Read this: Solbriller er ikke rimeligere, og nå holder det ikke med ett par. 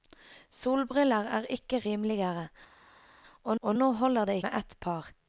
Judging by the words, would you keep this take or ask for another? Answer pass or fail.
fail